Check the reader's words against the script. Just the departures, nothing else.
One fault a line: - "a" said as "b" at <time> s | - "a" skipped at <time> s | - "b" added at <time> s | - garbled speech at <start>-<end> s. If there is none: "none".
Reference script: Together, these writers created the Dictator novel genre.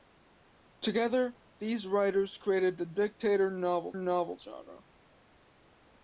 - "novel" added at 4.0 s